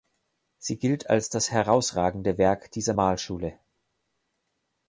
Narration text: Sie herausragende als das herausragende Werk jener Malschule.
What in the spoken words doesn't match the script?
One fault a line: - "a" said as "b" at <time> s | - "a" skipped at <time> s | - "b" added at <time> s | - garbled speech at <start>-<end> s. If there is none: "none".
- "herausragende" said as "gilt" at 0.8 s
- "jener" said as "dieser" at 2.7 s